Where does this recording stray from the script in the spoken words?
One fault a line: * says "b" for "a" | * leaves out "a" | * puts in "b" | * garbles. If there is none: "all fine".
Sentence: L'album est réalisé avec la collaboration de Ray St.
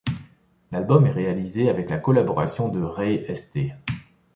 all fine